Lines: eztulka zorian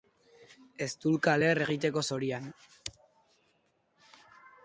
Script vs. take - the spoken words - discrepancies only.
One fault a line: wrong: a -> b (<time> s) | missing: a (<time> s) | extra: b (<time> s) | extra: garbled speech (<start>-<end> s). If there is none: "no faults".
extra: leher egiteko (1.4 s)